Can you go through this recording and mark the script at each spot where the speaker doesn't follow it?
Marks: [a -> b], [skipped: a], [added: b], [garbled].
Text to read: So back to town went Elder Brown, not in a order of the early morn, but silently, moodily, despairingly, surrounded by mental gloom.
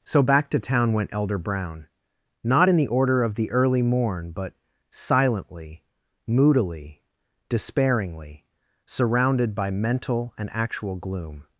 So back to town went Elder Brown, not in [a -> the] order of the early morn, but silently, moodily, despairingly, surrounded by mental [added: and actual] gloom.